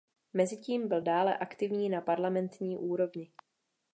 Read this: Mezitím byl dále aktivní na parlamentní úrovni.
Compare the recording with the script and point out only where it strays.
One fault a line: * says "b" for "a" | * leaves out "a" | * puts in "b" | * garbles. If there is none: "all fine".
all fine